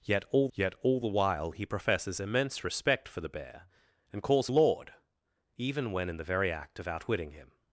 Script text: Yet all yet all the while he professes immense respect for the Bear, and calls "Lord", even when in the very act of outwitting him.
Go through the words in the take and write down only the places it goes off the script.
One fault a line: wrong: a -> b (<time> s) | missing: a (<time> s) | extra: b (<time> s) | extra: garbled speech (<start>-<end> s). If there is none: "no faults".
no faults